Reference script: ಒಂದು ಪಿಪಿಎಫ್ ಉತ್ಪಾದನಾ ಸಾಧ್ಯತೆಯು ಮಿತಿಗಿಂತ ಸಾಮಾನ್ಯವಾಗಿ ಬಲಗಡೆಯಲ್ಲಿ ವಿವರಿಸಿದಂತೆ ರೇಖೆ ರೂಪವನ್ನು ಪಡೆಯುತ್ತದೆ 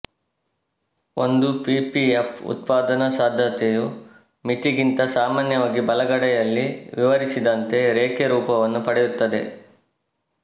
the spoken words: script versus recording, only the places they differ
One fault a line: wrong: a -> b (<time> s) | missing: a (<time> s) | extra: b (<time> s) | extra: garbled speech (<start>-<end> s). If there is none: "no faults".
no faults